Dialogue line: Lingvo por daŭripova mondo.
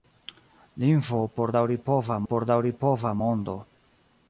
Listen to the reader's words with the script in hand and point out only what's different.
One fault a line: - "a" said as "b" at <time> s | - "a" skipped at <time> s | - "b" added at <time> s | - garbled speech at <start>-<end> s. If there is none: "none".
- "por daŭripova" added at 2.3 s